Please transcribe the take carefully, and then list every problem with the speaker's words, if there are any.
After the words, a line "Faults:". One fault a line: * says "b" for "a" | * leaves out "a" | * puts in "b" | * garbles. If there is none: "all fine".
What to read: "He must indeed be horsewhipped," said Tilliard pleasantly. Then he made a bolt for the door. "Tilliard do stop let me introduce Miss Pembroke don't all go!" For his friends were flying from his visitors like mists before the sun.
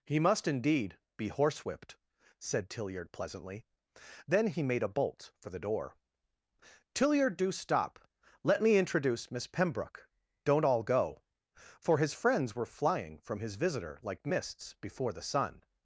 "He must indeed be horsewhipped," said Tilliard pleasantly. Then he made a bolt for the door. "Tilliard do stop let me introduce Miss Pembroke don't all go!" For his friends were flying from his visitor like mists before the sun.
Faults:
* says "visitor" for "visitors"